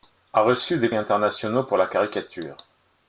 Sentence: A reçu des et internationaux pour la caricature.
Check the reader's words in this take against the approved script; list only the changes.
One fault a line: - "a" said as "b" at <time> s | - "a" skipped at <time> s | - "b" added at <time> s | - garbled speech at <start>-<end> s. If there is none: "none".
none